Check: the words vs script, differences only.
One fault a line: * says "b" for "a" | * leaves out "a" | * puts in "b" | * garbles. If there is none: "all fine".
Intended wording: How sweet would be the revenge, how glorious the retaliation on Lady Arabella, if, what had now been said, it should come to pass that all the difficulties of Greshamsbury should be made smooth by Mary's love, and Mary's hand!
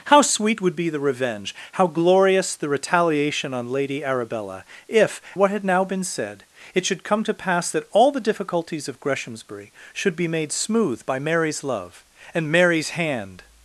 all fine